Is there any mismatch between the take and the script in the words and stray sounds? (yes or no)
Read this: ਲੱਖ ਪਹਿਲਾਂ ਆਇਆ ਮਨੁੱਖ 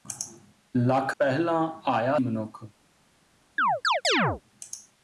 yes